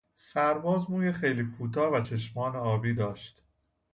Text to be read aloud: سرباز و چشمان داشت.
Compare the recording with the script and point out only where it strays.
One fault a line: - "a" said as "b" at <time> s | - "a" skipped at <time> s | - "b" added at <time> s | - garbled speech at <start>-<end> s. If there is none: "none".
- "موی خیلی کوتاه" added at 0.9 s
- "آبی" added at 2.6 s